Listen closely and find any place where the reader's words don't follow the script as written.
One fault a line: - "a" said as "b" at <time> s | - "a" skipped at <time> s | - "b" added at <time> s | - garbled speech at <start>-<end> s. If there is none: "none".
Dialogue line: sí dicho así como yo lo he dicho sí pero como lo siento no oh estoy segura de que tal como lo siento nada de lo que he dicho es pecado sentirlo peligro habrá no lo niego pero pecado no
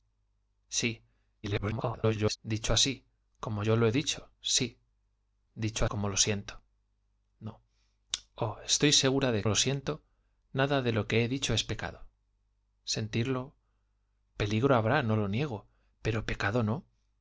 - garbled speech at 1.4-2.4 s
- "pero" said as "dicho" at 5.5 s
- "que tal como" skipped at 9.4 s